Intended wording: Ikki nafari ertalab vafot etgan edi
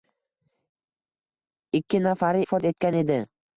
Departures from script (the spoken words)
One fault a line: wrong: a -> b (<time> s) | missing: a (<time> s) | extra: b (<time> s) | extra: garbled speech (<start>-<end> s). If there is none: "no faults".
missing: ertalab (2.4 s)